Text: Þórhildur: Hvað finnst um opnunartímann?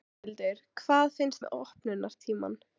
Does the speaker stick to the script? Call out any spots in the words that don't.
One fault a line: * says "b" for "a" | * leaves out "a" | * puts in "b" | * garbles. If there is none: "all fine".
all fine